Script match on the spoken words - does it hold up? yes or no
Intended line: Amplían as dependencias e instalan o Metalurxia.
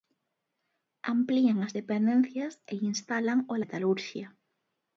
yes